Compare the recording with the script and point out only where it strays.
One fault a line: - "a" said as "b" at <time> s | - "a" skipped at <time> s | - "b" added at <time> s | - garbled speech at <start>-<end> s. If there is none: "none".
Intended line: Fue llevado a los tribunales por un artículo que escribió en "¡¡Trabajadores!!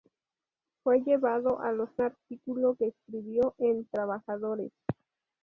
- "tribunales por un" skipped at 1.9 s